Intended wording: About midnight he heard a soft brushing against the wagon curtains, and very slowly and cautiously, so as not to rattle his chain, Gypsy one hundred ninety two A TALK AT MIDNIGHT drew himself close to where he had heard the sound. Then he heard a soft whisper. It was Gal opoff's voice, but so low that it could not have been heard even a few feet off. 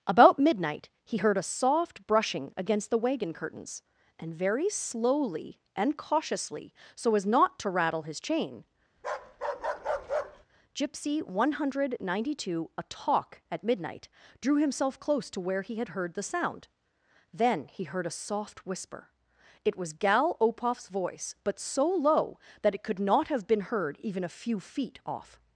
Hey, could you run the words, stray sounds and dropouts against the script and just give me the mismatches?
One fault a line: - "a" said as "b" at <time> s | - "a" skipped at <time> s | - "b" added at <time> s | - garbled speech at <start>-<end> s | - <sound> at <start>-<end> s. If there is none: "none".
- bark at 9.0-10.5 s